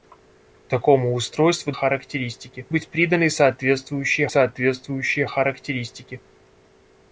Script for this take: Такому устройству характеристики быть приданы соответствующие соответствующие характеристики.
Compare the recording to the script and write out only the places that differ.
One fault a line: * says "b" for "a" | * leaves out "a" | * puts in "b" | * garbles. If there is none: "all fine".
all fine